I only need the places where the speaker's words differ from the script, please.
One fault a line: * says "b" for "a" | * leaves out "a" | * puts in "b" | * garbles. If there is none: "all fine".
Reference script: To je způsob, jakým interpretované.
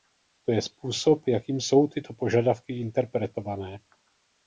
* puts in "jsou tyto požadavky"